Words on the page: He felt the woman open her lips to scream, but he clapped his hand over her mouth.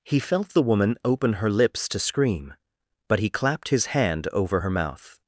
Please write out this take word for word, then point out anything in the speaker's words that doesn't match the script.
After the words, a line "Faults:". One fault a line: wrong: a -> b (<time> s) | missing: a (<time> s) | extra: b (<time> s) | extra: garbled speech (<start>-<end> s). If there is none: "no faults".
He felt the woman open her lips to scream, but he clapped his hand over her mouth.
Faults:
no faults